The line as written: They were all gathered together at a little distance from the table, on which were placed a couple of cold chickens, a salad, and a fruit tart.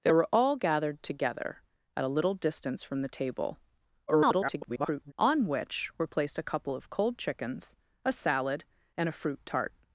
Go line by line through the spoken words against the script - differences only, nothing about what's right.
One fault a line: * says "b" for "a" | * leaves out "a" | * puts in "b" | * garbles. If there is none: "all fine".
* garbles